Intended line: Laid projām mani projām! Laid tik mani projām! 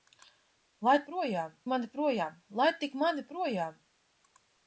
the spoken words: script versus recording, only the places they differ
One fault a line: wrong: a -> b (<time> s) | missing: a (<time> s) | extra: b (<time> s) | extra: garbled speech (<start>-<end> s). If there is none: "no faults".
no faults